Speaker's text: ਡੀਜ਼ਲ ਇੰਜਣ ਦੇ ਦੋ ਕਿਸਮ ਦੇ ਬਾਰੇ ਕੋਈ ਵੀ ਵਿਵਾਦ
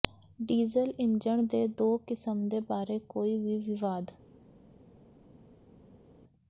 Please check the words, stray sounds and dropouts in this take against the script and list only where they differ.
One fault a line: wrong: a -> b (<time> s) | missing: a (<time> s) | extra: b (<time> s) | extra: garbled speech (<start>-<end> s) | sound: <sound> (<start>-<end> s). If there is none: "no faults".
no faults